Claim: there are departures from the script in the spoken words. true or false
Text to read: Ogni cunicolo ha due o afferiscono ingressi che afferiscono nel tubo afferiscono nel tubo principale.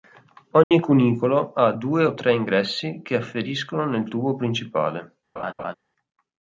true